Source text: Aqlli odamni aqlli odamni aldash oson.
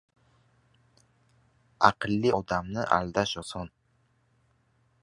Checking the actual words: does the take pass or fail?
fail